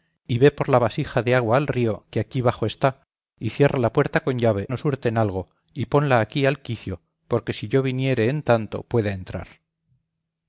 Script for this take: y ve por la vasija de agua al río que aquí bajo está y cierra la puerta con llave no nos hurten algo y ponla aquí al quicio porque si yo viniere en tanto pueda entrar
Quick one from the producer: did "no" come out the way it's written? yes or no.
no